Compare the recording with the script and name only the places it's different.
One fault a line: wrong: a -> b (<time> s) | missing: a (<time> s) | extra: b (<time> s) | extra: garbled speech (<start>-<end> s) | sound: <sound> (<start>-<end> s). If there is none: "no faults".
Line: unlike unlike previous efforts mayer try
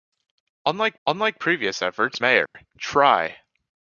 sound: dropout (2.5-2.5 s)